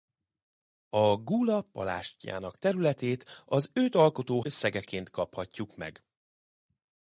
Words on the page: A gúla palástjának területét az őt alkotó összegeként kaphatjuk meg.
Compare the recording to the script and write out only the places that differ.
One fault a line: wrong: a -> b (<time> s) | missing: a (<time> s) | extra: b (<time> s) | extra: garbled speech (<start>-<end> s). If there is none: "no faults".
no faults